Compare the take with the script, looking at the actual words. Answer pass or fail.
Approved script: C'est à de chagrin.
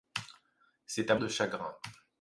pass